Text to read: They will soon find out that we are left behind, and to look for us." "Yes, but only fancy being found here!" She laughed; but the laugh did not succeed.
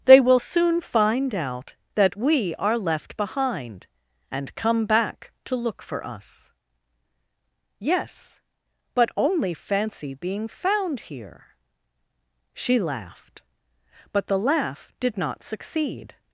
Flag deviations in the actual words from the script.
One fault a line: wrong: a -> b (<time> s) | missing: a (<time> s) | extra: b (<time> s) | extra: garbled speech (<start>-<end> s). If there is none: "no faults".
extra: come back (4.6 s)